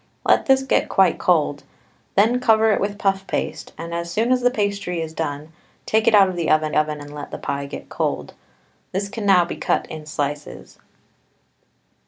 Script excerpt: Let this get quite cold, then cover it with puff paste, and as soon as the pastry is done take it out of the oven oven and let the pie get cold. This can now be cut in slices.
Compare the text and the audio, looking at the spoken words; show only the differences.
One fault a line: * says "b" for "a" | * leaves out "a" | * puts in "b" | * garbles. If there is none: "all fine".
all fine